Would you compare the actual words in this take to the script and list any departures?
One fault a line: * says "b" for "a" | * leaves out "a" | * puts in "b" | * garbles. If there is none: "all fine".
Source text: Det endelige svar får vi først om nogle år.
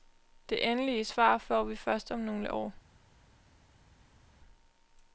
all fine